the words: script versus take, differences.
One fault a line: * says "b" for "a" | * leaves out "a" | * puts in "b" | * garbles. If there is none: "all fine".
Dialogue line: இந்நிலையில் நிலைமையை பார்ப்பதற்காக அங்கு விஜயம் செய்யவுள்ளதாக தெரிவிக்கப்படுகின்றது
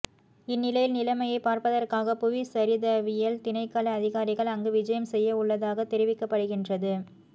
* puts in "புவிச்சரிதவியல் திணைக்கள அதிகாரிகள்"